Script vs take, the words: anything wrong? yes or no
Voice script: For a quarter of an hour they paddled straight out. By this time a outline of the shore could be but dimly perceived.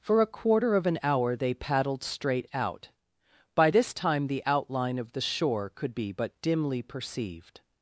yes